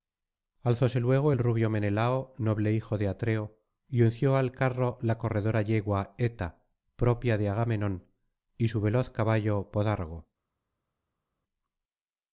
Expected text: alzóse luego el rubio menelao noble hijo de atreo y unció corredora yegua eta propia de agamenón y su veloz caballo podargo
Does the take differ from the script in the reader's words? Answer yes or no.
yes